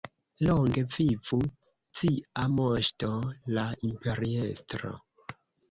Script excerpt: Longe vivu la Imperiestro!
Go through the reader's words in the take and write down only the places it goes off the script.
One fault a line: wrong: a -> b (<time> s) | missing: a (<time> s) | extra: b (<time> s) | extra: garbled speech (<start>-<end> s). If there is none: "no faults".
extra: cia Moŝto (2.0 s)